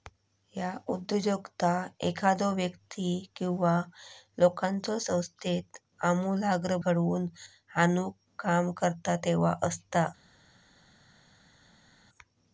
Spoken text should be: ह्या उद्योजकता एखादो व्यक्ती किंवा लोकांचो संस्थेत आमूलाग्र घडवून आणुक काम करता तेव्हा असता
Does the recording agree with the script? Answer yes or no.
yes